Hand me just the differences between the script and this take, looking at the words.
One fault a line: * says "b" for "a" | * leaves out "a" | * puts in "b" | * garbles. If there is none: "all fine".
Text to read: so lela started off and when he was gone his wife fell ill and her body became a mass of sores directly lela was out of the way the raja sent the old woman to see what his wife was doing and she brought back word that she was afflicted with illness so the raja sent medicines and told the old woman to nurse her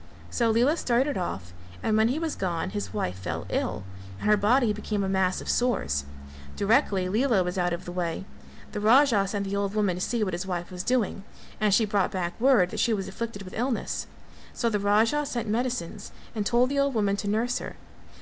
all fine